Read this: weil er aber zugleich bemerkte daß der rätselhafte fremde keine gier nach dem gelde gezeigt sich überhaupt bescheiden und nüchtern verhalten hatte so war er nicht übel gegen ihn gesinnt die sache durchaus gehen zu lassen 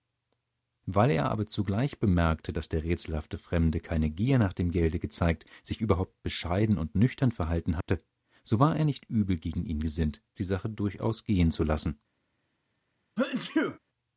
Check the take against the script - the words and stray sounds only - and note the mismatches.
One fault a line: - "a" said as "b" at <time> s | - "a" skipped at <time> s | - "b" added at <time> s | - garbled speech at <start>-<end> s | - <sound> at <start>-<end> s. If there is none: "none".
- dropout at 7.8-7.9 s
- sneeze at 13.2-13.8 s